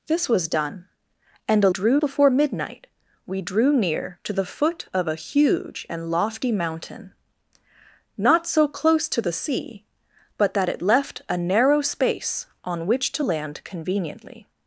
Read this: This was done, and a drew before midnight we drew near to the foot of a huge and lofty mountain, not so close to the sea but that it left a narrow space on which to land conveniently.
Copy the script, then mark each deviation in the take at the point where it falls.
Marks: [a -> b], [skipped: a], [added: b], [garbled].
This was done, and a drew before midnight we drew near to the foot of a huge and lofty mountain, not so close to the sea but that it left a narrow space on which to land conveniently.